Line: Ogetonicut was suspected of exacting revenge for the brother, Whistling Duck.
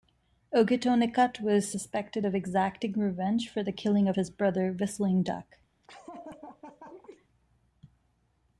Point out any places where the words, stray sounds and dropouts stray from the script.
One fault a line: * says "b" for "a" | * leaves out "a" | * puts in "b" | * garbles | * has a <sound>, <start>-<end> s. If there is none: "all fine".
* puts in "killing of his"
* has a laugh, 5.8-7.3 s